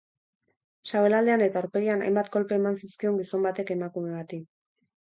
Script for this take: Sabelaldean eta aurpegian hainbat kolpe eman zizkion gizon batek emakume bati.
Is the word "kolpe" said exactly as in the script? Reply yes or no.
yes